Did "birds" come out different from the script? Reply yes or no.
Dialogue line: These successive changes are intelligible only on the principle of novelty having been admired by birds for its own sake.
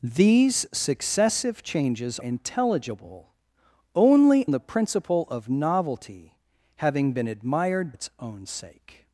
yes